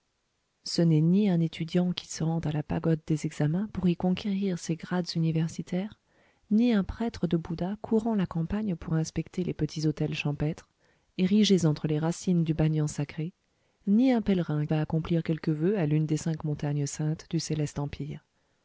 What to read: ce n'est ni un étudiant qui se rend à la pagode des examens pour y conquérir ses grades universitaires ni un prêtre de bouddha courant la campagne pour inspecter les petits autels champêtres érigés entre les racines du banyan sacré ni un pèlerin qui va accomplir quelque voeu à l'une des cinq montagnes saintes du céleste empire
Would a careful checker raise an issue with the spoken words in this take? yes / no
yes